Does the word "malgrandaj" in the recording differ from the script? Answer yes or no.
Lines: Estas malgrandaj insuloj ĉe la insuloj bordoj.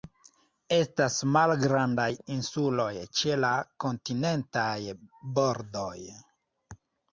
no